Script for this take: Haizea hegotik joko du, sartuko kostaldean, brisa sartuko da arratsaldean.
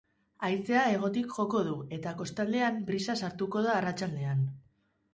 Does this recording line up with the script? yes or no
no